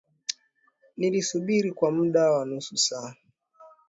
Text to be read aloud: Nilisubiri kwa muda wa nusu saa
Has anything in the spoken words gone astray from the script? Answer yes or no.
no